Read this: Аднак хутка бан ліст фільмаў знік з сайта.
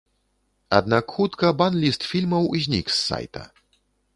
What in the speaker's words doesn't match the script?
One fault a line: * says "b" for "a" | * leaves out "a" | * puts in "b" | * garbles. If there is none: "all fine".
all fine